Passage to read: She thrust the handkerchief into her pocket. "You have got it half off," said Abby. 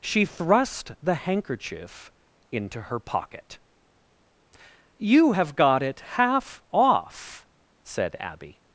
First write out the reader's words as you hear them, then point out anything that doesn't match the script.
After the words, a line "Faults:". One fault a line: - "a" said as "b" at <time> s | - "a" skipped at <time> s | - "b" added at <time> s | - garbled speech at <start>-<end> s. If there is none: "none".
She thrust the handkerchief into her pocket. "You have got it half off," said Abby.
Faults:
none